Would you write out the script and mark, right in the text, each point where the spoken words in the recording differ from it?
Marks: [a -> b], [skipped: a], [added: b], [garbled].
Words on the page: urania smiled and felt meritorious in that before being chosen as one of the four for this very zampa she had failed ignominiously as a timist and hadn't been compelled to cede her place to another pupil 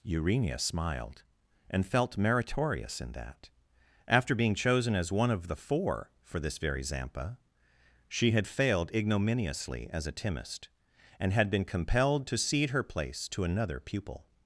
urania smiled and felt meritorious in that [before -> after] being chosen as one of the four for this very zampa she had failed ignominiously as a timist and [hadn't -> had] been compelled to cede her place to another pupil